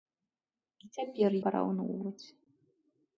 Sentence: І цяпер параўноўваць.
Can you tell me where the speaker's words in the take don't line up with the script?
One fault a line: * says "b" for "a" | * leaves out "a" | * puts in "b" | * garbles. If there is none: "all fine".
all fine